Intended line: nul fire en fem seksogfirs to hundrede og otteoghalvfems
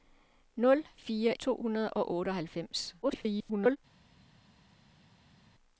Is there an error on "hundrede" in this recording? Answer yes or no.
no